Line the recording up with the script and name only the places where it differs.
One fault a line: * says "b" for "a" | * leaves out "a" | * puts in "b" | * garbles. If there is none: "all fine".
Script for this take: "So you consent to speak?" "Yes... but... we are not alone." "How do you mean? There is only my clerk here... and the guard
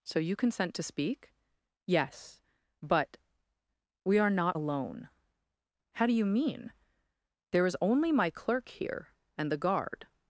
all fine